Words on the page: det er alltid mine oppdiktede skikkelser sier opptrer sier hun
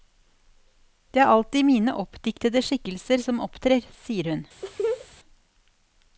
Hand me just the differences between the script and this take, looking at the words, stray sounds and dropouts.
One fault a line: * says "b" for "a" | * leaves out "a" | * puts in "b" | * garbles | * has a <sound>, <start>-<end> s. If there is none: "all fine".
* says "som" for "sier"
* has a laugh, 4.6-5.1 s